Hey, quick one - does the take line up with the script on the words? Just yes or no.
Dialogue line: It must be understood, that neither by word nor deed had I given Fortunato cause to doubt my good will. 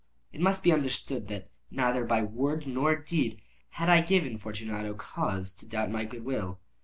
yes